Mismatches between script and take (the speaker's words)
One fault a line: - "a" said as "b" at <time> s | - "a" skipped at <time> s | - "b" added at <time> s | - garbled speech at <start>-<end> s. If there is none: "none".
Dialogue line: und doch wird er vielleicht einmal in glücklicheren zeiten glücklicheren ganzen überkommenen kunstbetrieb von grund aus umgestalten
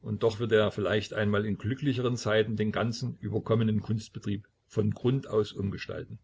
- "glücklicheren" said as "den" at 2.5 s